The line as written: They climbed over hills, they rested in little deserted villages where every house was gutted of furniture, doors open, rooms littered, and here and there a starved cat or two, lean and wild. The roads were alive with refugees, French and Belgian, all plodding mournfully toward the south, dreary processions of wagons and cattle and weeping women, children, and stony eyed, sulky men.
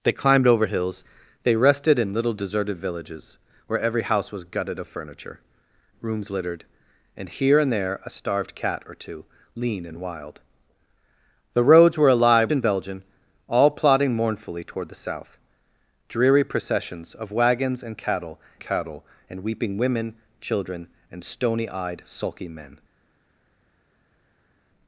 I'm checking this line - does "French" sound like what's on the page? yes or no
no